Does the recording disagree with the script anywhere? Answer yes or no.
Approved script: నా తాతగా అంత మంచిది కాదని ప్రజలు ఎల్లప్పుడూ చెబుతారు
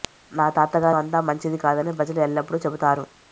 no